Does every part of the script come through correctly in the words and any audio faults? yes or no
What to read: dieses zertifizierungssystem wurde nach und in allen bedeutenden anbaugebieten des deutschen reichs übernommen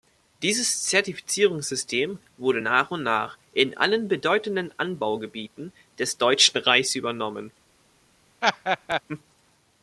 no